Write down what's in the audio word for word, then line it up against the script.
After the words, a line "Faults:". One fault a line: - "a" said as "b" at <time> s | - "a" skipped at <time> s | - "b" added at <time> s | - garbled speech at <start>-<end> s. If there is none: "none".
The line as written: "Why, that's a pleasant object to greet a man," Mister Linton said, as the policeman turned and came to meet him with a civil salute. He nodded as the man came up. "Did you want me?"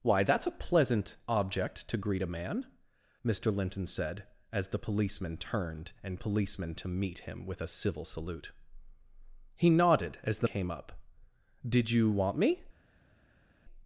"Why, that's a pleasant object to greet a man," Mister Linton said, as the policeman turned and policeman to meet him with a civil salute. He nodded as the came up. "Did you want me?"
Faults:
- "came" said as "policeman" at 6.2 s
- "man" skipped at 10.5 s